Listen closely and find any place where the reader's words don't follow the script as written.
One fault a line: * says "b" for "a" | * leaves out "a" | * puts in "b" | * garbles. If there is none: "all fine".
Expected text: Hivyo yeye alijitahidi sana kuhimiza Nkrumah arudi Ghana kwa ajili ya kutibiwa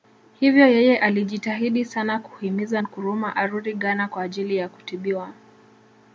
all fine